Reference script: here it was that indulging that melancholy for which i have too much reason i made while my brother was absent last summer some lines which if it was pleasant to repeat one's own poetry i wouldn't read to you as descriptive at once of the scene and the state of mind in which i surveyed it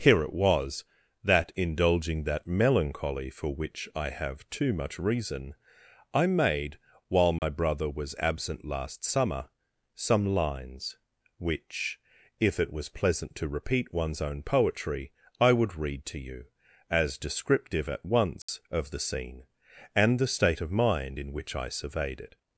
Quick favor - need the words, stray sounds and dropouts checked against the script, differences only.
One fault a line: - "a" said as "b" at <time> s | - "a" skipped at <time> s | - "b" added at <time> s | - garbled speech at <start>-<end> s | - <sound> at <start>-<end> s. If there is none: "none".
- dropout at 7.4-7.4 s
- "wouldn't" said as "would" at 15.5 s
- dropout at 18.4-18.5 s